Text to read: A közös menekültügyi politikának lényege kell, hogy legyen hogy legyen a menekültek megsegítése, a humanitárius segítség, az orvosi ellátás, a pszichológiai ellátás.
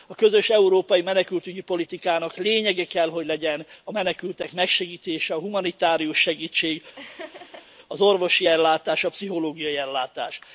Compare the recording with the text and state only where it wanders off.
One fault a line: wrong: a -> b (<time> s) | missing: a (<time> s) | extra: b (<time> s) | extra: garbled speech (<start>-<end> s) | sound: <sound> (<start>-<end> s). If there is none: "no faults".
extra: európai (0.5 s)
missing: hogy legyen (3.7 s)
sound: laugh (7.0-7.7 s)